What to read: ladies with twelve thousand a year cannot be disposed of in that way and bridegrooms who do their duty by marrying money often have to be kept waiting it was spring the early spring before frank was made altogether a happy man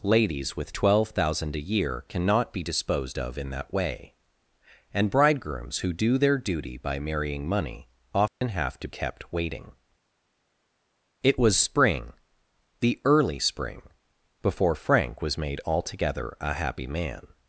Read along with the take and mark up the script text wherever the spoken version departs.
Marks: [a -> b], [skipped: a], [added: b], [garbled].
ladies with twelve thousand a year cannot be disposed of in that way and bridegrooms who do their duty by marrying money often have to [skipped: be] kept waiting it was spring the early spring before frank was made altogether a happy man